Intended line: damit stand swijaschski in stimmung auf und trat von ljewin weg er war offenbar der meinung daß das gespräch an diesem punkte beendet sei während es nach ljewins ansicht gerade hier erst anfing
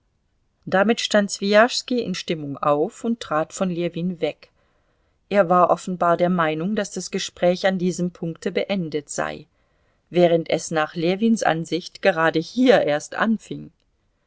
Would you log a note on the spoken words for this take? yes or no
no